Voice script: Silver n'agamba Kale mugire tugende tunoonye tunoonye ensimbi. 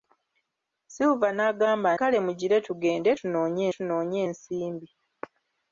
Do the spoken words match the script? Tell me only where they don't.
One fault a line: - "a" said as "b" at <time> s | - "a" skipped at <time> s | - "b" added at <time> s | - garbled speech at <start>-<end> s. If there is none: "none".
none